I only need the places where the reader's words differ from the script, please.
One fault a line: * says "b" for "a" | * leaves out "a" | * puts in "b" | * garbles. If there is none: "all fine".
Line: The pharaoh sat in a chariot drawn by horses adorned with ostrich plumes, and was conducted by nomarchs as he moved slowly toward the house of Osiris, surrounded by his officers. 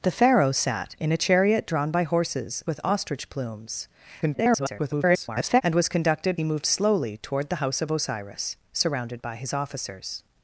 * leaves out "adorned"
* garbles
* leaves out "by nomarchs as"